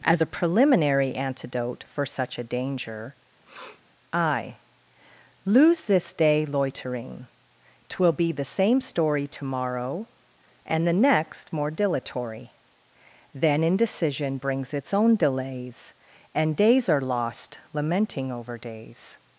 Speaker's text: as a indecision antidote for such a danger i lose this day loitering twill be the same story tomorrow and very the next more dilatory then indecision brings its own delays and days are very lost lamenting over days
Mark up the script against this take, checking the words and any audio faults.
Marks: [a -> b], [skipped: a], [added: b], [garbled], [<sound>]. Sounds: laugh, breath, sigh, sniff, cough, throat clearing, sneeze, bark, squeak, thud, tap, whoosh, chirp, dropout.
as a [indecision -> preliminary] antidote for such a danger [sniff] i lose this day loitering twill be the same story tomorrow and [skipped: very] the next more dilatory then indecision brings its own delays and days are [skipped: very] lost lamenting over days